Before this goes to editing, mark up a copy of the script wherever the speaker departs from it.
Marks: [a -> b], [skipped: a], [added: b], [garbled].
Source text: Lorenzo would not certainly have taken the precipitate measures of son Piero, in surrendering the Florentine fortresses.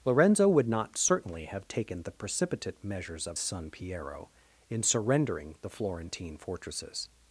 Lorenzo would not certainly have taken the precipitate measures of son Piero, in surrendering the Florentine fortresses.